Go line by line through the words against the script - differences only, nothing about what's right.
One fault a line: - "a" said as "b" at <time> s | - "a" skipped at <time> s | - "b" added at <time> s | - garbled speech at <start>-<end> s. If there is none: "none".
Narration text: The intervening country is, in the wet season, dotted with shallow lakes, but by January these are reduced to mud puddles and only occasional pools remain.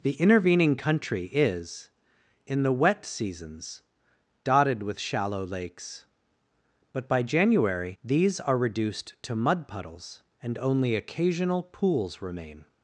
- "season" said as "seasons" at 3.0 s